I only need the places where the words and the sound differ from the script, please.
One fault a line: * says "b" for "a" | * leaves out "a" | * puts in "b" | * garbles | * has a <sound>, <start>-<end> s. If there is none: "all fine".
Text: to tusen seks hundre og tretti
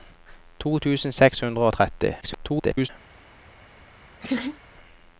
* garbles
* has a laugh, 4.2-4.6 s